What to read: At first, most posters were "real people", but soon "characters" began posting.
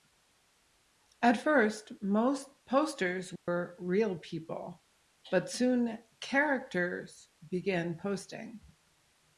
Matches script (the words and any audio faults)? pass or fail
fail